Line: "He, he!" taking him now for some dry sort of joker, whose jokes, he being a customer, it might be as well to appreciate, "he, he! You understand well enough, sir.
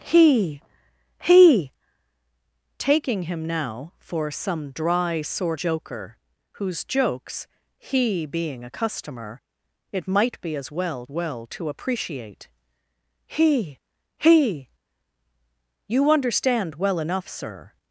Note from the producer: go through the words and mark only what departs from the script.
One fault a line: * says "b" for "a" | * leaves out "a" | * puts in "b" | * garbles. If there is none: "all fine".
* leaves out "of"
* puts in "well"